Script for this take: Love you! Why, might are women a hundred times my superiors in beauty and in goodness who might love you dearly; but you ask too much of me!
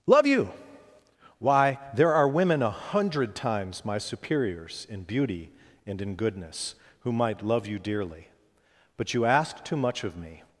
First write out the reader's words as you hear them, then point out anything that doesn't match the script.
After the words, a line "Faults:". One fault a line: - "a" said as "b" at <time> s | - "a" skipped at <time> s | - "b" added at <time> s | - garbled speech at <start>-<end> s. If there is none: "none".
Love you! Why, there are women a hundred times my superiors in beauty and in goodness who might love you dearly; but you ask too much of me!
Faults:
- "might" said as "there" at 1.9 s